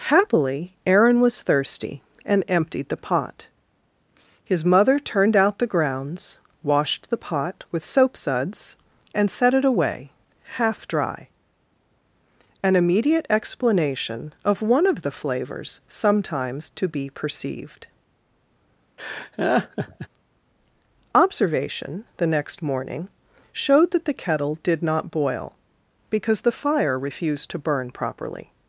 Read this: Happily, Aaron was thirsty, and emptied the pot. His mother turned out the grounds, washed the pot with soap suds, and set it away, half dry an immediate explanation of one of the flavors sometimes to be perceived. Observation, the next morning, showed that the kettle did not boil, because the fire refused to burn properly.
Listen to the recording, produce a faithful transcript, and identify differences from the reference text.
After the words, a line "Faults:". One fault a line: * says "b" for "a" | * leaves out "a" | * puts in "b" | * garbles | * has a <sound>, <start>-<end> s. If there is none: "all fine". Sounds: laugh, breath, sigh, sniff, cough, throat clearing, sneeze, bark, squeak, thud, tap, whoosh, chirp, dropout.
Happily, Aaron was thirsty, and emptied the pot. His mother turned out the grounds, washed the pot with soap suds, and set it away, half dry an immediate explanation of one of the flavors sometimes to be perceived. Observation, the next morning, showed that the kettle did not boil, because the fire refused to burn properly.
Faults:
* has a laugh, 19.0-20.1 s